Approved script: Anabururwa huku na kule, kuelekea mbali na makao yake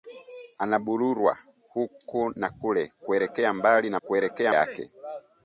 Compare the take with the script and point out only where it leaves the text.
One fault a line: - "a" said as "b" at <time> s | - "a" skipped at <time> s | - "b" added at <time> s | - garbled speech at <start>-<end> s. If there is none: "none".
- "makao" said as "kuelekea" at 4.0 s